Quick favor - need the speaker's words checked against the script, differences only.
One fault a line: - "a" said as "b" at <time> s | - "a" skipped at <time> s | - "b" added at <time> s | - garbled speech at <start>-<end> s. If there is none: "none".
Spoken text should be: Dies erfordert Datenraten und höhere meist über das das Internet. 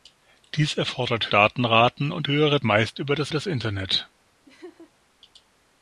none